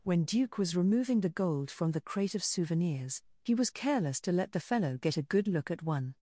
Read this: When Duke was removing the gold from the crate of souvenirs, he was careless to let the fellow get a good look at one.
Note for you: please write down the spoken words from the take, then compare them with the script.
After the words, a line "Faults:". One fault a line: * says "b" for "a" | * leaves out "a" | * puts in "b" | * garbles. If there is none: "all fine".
When Duke was removing the gold from the crate of souvenirs, he was careless to let the fellow get a good look at one.
Faults:
all fine